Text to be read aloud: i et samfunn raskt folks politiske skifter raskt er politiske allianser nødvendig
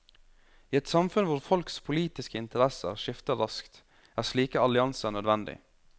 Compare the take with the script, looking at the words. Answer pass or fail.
fail